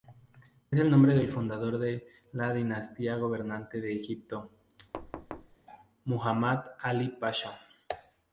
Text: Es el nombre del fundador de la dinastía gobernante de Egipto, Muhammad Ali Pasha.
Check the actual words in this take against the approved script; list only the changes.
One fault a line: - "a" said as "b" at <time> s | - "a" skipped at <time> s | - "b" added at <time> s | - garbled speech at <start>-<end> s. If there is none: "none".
none